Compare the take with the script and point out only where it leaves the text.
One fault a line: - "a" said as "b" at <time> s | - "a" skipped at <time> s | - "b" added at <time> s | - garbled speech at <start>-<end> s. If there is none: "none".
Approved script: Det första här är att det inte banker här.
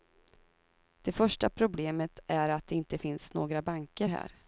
- "här" said as "problemet" at 1.5 s
- "finns några" added at 3.0 s